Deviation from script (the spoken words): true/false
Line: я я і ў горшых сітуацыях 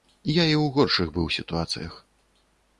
true